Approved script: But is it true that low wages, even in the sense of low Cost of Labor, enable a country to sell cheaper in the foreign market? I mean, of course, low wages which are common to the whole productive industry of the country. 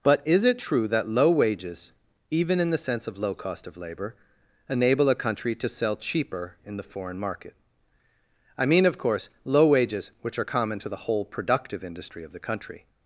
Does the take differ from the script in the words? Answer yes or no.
no